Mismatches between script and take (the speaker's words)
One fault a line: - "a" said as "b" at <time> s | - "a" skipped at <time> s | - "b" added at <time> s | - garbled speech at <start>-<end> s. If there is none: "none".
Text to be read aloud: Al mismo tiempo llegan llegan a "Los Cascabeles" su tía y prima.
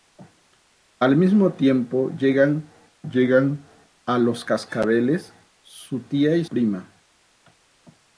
none